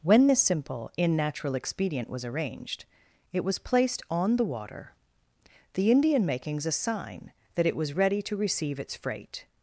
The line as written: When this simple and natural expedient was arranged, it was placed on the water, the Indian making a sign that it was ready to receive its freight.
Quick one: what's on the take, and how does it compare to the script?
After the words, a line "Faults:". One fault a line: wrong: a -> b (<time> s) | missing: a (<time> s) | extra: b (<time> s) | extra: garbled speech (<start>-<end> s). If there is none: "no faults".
When this simple in natural expedient was arranged, it was placed on the water, the Indian makings a sign that it was ready to receive its freight.
Faults:
wrong: and -> in (1.0 s)
wrong: making -> makings (6.2 s)